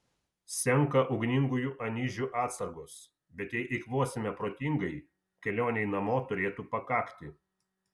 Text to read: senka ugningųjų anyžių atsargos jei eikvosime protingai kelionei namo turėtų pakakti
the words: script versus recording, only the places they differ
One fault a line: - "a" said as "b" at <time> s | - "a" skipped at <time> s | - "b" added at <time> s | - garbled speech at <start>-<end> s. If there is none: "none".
- "bet" added at 3.4 s